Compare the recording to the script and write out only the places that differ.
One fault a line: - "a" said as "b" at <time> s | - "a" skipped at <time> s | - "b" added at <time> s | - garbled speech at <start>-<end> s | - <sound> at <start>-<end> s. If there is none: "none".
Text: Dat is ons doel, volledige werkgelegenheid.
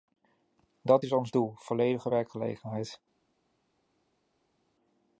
none